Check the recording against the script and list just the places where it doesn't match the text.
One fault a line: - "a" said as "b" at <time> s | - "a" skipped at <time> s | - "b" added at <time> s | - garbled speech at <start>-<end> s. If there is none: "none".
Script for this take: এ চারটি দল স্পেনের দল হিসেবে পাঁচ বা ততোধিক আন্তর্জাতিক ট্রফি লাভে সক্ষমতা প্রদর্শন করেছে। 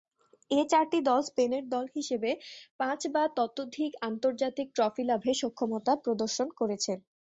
none